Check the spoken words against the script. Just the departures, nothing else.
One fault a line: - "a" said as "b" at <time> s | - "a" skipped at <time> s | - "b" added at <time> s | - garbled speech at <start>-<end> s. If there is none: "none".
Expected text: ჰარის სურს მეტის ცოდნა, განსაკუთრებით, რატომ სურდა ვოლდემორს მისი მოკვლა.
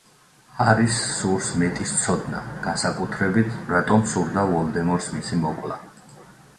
none